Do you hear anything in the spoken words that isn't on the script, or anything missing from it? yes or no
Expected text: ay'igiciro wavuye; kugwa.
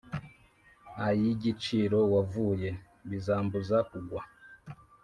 yes